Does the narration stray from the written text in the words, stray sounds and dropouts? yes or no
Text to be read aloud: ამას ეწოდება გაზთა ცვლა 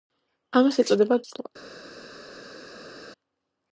yes